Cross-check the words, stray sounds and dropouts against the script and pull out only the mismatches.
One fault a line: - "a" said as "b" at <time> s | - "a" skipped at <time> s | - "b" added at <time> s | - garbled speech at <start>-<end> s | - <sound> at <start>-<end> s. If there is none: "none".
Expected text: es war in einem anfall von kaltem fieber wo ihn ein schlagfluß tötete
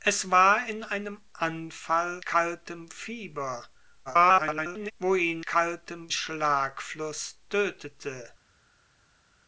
- "von" skipped at 2.2 s
- garbled speech at 4.1-4.9 s
- "ein" said as "kaltem" at 5.5 s